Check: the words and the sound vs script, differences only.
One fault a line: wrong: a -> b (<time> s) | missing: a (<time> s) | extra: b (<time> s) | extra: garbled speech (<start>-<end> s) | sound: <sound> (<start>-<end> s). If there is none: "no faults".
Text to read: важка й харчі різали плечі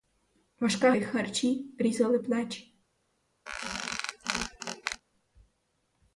sound: squeak (3.5-5.0 s)